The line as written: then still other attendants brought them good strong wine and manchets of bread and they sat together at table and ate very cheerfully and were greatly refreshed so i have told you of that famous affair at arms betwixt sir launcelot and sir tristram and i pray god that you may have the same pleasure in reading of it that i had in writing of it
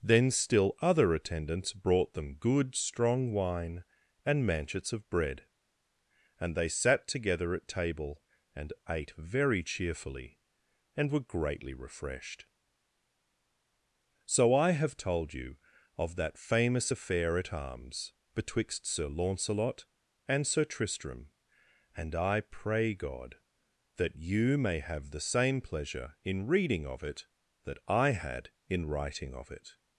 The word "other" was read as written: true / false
true